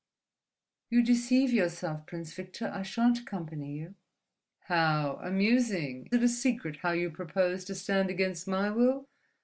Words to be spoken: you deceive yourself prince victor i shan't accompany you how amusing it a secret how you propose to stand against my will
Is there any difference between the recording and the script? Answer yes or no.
no